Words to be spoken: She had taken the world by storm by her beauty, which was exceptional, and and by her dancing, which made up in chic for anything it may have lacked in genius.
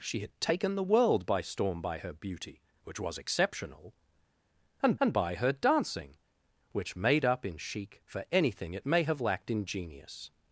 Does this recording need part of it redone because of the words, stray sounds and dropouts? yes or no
no